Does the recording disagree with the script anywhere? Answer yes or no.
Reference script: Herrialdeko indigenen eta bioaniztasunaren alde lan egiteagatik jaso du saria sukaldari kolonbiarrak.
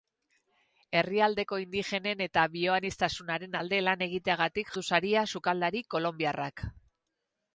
yes